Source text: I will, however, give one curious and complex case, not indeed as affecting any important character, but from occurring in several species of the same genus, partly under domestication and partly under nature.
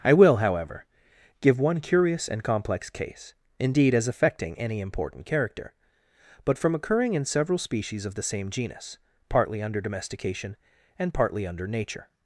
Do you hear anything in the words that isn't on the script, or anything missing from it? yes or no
yes